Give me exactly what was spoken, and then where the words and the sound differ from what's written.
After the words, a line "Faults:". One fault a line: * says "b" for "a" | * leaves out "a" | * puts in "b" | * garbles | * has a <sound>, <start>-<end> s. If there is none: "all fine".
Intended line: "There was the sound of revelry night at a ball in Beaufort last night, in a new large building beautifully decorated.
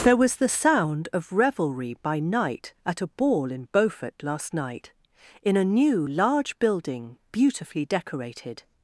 "There was the sound of revelry by night at a ball in Beaufort last night, in a new large building beautifully decorated.
Faults:
* puts in "by"